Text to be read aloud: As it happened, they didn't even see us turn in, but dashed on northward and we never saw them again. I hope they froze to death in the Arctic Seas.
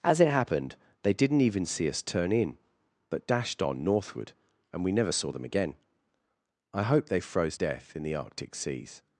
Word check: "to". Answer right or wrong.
wrong